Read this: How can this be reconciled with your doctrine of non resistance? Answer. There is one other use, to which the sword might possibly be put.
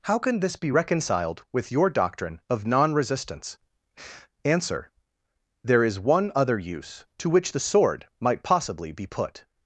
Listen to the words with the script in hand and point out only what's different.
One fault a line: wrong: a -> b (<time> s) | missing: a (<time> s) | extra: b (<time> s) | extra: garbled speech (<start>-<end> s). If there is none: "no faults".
no faults